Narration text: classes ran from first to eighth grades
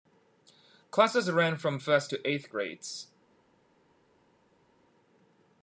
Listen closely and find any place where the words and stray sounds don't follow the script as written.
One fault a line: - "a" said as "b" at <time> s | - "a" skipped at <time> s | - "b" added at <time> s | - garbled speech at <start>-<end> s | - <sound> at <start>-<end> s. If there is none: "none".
none